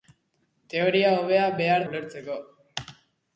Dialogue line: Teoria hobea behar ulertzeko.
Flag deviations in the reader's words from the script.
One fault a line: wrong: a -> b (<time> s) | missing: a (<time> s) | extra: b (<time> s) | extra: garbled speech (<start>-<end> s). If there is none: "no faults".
no faults